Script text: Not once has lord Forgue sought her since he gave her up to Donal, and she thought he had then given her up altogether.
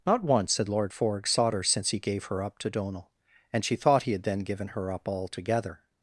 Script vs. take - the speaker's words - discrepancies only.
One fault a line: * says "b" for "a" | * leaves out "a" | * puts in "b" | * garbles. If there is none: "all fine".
* says "had" for "has"